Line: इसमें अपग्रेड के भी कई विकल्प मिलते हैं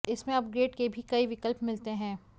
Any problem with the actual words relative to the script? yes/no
no